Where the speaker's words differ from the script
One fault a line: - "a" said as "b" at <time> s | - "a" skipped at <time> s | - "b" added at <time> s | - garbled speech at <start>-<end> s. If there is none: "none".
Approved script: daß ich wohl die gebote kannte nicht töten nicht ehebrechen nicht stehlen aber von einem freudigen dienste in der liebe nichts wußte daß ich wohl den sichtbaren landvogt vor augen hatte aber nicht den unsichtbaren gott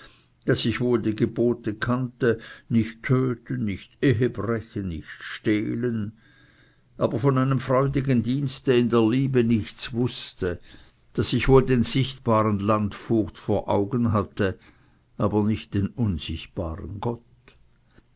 none